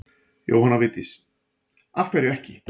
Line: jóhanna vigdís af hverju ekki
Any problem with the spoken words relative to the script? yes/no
no